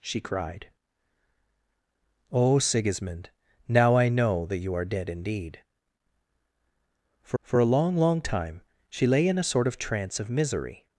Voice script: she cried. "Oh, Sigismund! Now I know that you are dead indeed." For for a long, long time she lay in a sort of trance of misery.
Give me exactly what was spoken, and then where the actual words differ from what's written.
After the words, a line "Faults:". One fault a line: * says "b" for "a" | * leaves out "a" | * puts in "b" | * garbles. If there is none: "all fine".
she cried. "Oh, Sigismund! Now I know that you are dead indeed." For for a long, long time she lay in a sort of trance of misery.
Faults:
all fine